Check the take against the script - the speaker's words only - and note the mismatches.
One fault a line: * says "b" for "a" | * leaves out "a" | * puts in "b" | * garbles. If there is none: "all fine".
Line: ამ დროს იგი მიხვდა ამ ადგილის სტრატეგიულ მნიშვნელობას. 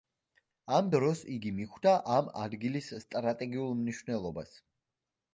all fine